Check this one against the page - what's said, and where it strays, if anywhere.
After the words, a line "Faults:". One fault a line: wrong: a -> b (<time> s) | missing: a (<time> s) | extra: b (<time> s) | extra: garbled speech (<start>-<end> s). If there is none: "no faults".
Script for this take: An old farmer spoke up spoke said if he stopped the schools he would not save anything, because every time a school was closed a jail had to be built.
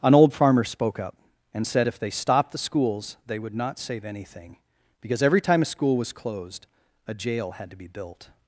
An old farmer spoke up and said if they stopped the schools they would not save anything, because every time a school was closed a jail had to be built.
Faults:
wrong: spoke -> and (1.5 s)
wrong: he -> they (2.0 s)
wrong: he -> they (3.3 s)